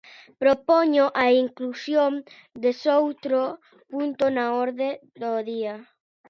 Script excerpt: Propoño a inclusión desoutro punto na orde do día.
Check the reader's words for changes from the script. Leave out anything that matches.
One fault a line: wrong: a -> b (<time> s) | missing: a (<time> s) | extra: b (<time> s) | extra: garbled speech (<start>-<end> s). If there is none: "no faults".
no faults